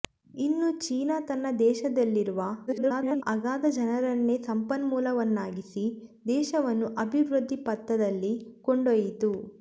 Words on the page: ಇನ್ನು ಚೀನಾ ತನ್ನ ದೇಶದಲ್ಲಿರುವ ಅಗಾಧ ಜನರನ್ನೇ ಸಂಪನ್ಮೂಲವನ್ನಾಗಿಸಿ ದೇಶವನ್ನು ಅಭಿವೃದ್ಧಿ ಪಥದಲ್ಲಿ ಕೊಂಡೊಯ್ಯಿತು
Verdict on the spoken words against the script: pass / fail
fail